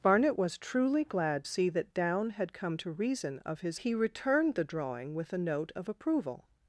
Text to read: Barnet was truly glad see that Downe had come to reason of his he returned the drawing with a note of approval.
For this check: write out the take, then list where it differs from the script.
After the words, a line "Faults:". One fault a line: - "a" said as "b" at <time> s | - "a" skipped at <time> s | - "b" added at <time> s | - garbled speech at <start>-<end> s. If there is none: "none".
Barnet was truly glad see that Downe had come to reason of his he returned the drawing with a note of approval.
Faults:
none